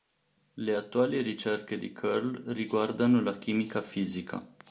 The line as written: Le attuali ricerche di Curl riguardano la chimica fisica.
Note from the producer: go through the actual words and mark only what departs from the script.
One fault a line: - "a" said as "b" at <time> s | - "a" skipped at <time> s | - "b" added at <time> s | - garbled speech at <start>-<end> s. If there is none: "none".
none